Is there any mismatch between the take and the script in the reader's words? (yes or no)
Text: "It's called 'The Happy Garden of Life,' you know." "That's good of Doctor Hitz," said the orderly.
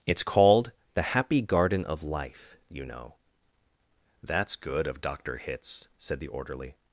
no